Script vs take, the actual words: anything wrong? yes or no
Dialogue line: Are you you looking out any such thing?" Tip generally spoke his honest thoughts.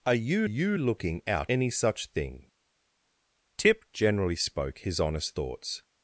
no